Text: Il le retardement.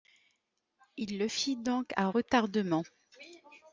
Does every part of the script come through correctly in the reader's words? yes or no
no